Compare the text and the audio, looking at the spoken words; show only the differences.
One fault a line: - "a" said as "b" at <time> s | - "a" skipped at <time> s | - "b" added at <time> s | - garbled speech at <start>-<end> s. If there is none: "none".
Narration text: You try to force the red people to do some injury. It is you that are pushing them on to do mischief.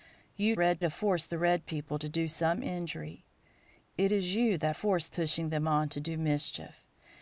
- "try" said as "red" at 0.5 s
- "are" said as "force" at 4.7 s